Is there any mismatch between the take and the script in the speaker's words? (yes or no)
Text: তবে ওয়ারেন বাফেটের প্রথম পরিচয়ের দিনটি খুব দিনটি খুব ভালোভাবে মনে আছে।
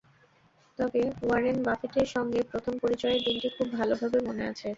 yes